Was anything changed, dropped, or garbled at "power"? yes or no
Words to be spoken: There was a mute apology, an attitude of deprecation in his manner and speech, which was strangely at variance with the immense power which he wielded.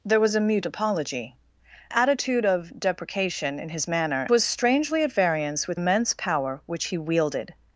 no